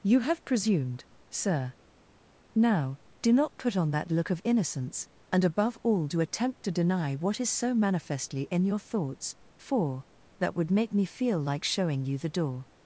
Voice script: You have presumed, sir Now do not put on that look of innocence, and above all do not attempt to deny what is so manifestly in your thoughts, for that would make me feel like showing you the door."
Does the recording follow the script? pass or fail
fail